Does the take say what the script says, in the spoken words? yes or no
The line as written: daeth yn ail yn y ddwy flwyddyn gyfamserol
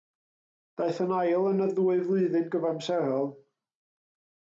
yes